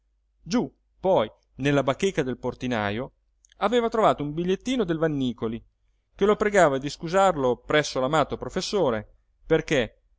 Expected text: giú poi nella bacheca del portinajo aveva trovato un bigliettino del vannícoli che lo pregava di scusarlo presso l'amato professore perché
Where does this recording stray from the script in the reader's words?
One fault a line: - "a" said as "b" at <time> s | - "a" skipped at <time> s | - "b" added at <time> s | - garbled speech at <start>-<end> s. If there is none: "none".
none